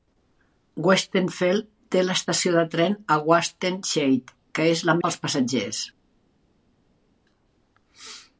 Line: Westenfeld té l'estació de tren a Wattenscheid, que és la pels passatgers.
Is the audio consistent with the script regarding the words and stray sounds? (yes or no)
yes